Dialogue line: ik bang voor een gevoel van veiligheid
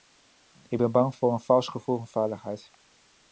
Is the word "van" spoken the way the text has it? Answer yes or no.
yes